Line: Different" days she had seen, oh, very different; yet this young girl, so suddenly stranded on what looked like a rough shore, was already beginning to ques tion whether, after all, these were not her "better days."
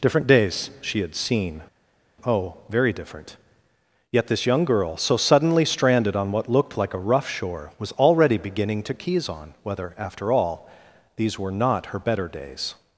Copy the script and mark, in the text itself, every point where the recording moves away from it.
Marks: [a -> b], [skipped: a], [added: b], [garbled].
Different" days she had seen, oh, very different; yet this young girl, so suddenly stranded on what looked like a rough shore, was already beginning to [ques tion -> keys on] whether, after all, these were not her "better days."